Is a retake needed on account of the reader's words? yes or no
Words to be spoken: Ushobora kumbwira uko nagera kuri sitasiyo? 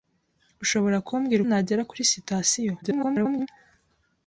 yes